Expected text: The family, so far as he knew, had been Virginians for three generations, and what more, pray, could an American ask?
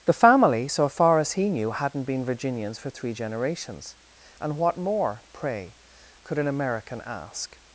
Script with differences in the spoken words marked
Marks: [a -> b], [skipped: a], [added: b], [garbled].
The family, so far as he knew, [had -> hadn't] been Virginians for three generations, and what more, pray, could an American ask?